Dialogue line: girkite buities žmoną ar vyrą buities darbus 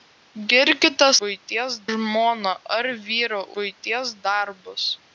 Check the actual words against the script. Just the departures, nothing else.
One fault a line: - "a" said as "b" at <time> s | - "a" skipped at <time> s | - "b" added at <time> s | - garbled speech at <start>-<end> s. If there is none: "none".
none